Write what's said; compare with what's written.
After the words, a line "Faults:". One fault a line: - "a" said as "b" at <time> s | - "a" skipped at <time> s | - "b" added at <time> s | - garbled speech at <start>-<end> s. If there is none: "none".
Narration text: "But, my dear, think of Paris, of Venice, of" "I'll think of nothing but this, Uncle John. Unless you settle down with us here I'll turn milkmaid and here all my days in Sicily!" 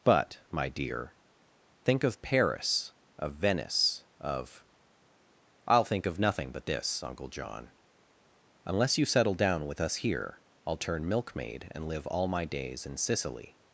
"But, my dear, think of Paris, of Venice, of" "I'll think of nothing but this, Uncle John. Unless you settle down with us here I'll turn milkmaid and live all my days in Sicily!"
Faults:
- "here" said as "live" at 11.9 s